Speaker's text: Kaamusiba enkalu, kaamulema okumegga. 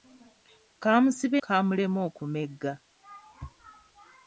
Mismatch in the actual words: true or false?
true